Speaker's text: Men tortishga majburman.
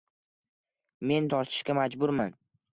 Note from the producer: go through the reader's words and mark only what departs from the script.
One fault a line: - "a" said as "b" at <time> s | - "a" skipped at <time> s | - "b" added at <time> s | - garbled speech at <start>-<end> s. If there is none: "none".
none